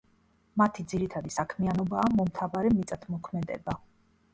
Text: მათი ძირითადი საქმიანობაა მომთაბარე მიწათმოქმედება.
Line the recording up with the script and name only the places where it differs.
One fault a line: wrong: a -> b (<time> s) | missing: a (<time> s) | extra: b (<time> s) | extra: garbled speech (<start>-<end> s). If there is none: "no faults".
no faults